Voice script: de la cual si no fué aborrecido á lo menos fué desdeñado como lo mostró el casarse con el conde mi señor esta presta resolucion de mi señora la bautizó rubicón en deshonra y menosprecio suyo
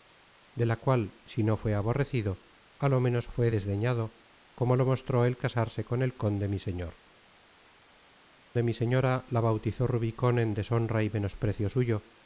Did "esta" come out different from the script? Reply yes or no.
yes